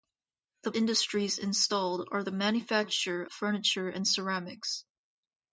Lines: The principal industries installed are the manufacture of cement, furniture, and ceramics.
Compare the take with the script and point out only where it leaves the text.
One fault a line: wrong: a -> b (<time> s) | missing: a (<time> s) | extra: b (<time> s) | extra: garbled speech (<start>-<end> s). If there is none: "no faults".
missing: principal (0.7 s)
missing: of cement (3.3 s)